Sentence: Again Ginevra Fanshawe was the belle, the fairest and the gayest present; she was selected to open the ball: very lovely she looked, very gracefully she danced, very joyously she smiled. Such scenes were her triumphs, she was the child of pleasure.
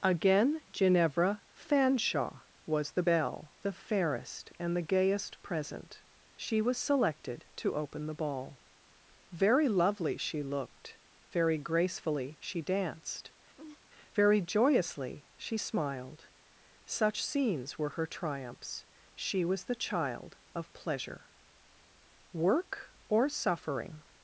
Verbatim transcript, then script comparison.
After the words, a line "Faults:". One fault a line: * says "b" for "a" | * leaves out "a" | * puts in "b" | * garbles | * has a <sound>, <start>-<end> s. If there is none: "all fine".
Again Ginevra Fanshawe was the belle, the fairest and the gayest present; she was selected to open the ball: very lovely she looked, very gracefully she danced, very joyously she smiled. Such scenes were her triumphs, she was the child of pleasure. Work or suffering
Faults:
* has a laugh, 13.6-13.8 s
* puts in "Work or suffering"